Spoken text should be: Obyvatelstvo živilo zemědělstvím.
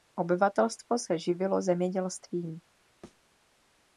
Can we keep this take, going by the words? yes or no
no